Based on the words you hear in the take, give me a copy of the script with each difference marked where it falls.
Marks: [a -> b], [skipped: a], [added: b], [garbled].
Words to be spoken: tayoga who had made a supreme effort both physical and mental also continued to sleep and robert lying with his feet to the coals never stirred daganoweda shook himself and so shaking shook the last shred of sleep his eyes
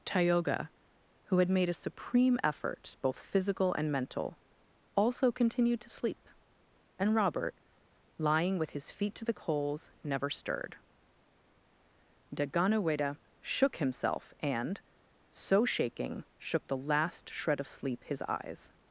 tayoga who had made a supreme effort both physical and mental also continued to sleep and robert lying with his feet to the coals never stirred daganoweda shook himself and so shaking shook the last shred of sleep his eyes